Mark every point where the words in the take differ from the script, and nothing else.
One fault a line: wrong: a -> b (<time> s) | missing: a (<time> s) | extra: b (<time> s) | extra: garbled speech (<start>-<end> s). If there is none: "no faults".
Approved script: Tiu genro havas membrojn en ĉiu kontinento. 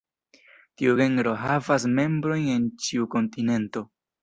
no faults